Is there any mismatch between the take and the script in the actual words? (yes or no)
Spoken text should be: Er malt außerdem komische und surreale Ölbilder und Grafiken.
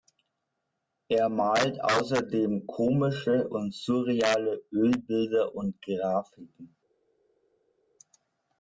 no